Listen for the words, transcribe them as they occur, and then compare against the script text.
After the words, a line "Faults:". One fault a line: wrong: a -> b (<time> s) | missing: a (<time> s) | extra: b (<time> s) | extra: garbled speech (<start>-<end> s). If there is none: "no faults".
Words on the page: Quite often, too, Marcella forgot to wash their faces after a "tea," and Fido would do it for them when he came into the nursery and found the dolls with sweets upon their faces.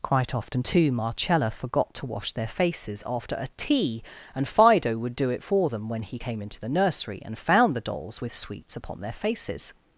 Quite often, too, Marcella forgot to wash their faces after a "tea," and Fido would do it for them when he came into the nursery and found the dolls with sweets upon their faces.
Faults:
no faults